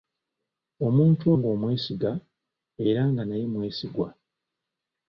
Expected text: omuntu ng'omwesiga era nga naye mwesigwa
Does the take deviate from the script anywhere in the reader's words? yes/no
no